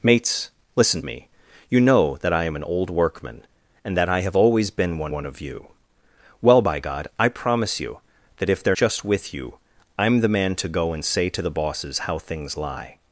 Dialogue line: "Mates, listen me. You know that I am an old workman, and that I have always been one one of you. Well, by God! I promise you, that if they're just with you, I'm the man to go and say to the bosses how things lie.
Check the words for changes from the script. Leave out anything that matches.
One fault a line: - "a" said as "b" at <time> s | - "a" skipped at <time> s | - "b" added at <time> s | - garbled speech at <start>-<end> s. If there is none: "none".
none